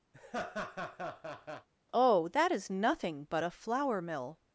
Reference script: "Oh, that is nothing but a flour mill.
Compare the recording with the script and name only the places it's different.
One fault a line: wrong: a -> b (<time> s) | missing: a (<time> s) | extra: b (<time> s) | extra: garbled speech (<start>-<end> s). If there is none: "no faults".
no faults